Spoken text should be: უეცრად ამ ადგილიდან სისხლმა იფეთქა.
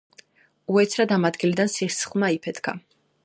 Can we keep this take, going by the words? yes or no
yes